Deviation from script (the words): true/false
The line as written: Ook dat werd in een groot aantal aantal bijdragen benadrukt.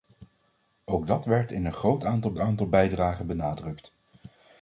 false